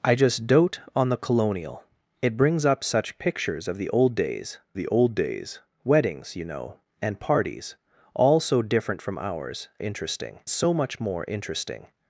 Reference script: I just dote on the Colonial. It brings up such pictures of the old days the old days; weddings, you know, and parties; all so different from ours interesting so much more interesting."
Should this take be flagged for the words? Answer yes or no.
no